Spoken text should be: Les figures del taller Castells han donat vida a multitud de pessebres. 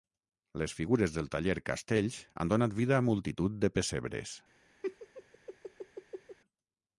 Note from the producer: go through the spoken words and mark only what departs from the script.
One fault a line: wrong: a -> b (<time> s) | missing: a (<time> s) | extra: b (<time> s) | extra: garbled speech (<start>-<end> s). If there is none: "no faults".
no faults